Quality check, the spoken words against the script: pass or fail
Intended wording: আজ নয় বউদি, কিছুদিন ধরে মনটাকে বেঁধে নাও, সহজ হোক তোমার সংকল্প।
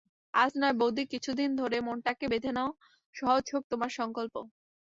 pass